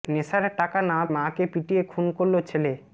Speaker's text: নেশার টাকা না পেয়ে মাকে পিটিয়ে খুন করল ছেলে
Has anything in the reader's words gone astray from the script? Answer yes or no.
yes